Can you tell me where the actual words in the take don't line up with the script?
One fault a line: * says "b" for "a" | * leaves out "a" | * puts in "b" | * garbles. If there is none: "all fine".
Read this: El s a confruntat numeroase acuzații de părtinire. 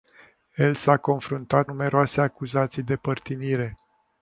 all fine